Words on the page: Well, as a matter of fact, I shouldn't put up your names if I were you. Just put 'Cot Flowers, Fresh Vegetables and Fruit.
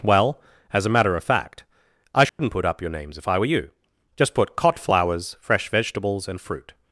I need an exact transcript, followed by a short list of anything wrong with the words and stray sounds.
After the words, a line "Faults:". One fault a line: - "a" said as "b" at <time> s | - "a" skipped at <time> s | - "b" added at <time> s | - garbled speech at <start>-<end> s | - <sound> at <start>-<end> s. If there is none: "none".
Well, as a matter of fact, I shouldn't put up your names if I were you. Just put 'Cot Flowers, Fresh Vegetables and Fruit.
Faults:
- dropout at 2.3-2.4 s